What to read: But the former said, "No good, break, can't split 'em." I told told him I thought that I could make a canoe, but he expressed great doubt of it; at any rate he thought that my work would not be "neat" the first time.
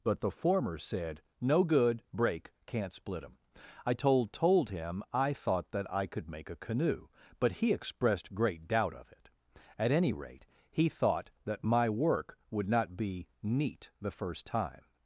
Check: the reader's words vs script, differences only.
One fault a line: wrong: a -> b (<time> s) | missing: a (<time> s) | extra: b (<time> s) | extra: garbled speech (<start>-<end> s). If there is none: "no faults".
no faults